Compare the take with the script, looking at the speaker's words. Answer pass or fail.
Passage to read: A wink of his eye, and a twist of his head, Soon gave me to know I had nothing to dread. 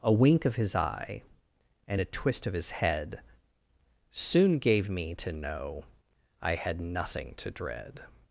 pass